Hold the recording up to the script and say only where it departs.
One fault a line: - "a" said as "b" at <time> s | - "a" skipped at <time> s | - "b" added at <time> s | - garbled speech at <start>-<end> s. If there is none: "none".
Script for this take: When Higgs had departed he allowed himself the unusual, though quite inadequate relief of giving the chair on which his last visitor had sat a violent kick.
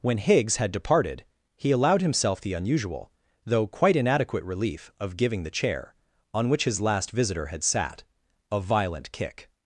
none